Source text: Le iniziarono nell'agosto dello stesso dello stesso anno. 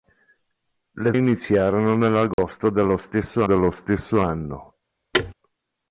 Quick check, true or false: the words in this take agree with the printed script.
true